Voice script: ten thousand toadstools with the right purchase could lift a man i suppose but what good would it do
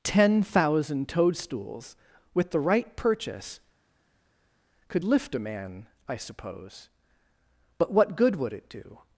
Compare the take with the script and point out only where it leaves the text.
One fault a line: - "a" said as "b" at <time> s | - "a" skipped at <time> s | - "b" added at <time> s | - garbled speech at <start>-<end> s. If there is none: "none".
none